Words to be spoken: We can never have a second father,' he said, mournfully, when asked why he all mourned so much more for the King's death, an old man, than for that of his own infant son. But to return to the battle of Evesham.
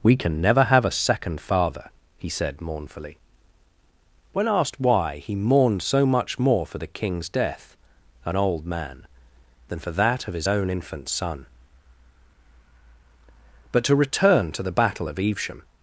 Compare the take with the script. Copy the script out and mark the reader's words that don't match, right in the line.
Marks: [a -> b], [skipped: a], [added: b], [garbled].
We can never have a second father,' he said, mournfully, when asked why he [skipped: all] mourned so much more for the King's death, an old man, than for that of his own infant son. But to return to the battle of Evesham.